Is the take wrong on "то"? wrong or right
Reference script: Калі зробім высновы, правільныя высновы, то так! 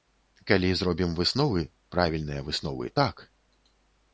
wrong